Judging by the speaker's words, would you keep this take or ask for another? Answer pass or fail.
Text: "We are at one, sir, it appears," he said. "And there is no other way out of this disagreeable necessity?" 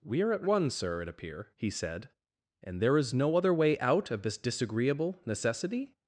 fail